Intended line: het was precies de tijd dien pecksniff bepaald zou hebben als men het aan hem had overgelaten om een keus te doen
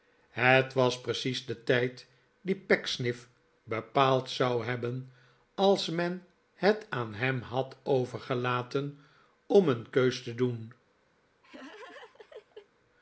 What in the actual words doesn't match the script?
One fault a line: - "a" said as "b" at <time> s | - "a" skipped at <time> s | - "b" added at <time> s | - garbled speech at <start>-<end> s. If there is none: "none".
none